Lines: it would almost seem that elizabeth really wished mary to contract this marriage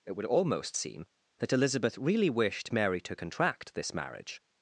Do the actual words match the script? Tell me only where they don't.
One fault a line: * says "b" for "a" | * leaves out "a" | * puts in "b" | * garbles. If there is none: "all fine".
all fine